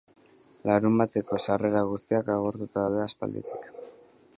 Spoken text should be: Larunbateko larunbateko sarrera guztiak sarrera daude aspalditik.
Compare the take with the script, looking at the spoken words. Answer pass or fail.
fail